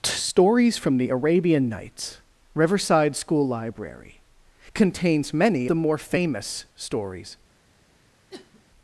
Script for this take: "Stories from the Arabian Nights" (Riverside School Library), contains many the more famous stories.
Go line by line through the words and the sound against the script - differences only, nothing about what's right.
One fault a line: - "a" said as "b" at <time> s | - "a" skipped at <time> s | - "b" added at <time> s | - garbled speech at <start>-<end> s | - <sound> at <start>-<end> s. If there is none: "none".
- sniff at 8.3-8.6 s